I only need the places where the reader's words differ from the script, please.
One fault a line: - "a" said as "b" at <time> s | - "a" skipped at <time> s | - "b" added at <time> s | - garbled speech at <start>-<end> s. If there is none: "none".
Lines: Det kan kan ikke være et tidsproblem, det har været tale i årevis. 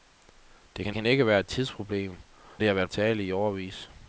none